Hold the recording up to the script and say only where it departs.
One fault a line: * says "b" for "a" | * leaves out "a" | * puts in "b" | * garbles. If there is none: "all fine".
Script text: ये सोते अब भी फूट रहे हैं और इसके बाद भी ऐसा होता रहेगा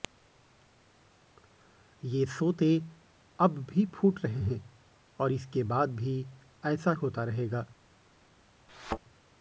all fine